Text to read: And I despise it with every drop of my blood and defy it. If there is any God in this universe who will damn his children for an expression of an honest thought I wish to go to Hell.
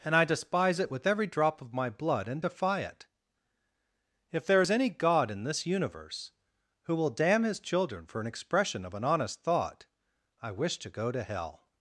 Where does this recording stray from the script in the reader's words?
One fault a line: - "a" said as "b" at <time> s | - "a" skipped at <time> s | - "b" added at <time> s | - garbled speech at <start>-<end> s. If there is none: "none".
none